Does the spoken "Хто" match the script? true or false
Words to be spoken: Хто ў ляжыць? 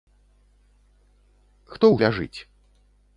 true